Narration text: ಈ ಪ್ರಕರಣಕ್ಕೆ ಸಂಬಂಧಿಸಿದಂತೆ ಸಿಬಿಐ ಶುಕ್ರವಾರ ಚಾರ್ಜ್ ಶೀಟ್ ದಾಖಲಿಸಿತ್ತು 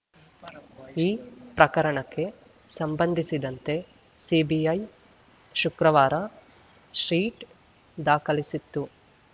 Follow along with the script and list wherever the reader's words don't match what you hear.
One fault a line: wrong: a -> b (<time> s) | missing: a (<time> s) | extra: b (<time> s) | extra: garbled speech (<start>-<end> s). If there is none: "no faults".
missing: ಚಾರ್ಜ್ (6.2 s)